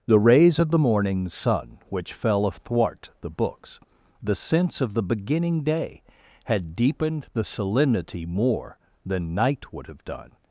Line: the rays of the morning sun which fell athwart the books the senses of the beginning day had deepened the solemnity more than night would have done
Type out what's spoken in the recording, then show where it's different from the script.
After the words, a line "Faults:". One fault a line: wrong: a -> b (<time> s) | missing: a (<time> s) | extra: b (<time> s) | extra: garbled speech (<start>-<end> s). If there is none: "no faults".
the rays of the morning sun which fell athwart the books the sense of the beginning day had deepened the solemnity more than night would have done
Faults:
wrong: senses -> sense (4.3 s)